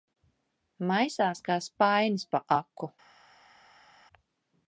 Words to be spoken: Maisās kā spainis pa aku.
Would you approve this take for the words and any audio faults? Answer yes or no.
yes